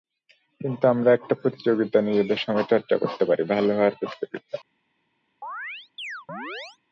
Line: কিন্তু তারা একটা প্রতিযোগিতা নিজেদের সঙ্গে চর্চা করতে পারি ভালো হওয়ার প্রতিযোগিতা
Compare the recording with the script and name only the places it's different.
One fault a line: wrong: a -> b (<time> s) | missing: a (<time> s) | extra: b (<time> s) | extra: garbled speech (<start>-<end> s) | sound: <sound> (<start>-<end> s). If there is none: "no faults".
wrong: তারা -> আমরা (0.9 s)
sound: chirp (5.4-6.8 s)